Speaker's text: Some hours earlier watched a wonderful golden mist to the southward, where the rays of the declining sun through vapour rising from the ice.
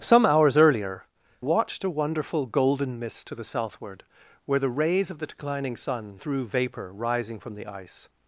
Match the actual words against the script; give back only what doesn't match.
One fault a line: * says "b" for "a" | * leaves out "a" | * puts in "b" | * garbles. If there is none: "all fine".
all fine